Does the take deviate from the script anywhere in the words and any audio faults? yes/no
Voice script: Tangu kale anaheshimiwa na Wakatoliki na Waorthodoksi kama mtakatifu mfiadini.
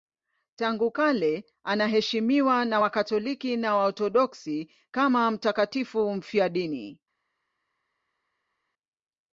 no